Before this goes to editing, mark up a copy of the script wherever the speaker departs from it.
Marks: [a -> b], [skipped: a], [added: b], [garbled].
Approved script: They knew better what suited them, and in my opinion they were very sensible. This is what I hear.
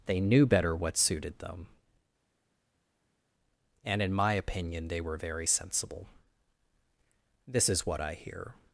They knew better what suited them, and in my opinion they were very sensible. This is what I hear.